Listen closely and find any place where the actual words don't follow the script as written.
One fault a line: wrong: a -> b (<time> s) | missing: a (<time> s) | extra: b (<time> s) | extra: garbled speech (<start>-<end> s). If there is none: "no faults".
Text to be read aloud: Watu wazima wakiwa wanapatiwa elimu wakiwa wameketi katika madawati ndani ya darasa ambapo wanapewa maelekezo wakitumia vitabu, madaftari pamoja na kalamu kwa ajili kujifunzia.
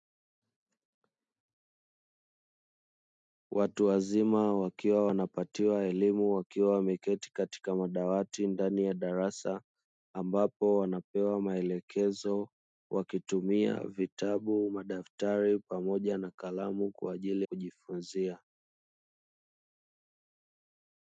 no faults